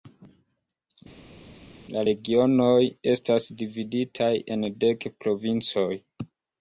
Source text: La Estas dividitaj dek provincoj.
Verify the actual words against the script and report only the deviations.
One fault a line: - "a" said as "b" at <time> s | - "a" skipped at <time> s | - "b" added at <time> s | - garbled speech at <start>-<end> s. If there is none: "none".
- "Regionoj" added at 2.0 s
- "en" added at 4.6 s